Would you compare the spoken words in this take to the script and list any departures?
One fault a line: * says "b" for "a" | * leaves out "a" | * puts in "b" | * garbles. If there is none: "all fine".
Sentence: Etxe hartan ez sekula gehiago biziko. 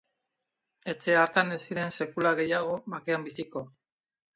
* puts in "ziren"
* puts in "bakean"